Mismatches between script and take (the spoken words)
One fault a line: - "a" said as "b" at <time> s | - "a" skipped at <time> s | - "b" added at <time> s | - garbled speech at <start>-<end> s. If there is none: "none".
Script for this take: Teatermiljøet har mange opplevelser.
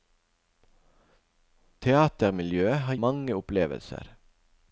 none